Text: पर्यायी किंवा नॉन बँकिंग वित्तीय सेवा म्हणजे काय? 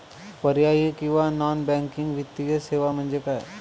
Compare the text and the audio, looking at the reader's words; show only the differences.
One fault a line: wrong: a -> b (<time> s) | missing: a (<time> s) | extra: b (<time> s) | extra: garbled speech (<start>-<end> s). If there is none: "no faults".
no faults